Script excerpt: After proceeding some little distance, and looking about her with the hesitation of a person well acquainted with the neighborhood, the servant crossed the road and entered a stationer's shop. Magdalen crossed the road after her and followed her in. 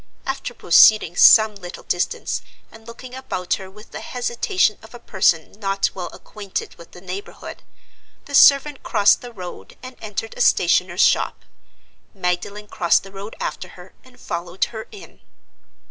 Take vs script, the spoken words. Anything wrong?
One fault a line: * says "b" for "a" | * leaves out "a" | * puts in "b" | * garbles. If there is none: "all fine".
* puts in "not"